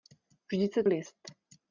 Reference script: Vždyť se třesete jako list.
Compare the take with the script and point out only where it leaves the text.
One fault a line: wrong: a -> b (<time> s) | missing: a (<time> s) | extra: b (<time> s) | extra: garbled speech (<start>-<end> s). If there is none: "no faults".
missing: třesete jako (0.8 s)